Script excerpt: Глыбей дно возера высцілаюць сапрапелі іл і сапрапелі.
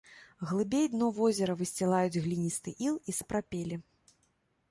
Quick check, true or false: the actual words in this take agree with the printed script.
false